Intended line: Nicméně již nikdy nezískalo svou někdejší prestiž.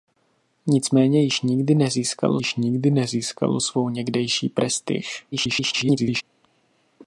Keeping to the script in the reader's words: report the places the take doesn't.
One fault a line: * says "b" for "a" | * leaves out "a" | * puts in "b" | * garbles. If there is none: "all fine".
* puts in "již nikdy nezískalo"
* garbles